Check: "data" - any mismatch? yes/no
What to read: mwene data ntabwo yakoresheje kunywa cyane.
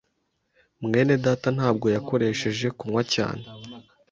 no